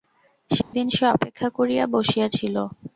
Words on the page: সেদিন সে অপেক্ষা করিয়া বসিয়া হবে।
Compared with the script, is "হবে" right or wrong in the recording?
wrong